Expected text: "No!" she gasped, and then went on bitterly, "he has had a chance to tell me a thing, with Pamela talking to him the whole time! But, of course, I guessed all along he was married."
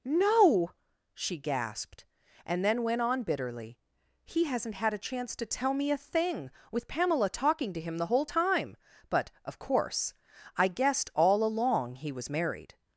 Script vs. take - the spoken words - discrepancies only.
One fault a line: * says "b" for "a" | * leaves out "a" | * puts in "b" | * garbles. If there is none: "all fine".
* says "hasn't" for "has"